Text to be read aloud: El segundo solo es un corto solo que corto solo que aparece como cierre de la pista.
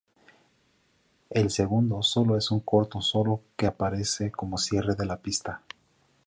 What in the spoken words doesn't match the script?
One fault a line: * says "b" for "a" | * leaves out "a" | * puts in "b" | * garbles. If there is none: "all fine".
* leaves out "corto solo que"